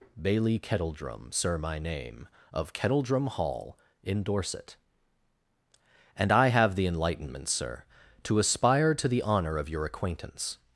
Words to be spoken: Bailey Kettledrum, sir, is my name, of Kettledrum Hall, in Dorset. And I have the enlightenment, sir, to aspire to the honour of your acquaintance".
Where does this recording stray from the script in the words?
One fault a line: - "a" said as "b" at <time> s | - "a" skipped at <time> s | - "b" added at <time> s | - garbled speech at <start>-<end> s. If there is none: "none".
- "is" skipped at 1.6 s